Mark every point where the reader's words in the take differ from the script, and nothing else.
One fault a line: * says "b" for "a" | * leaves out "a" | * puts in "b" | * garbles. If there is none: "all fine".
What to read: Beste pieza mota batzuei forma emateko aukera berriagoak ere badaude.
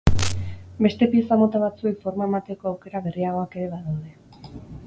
all fine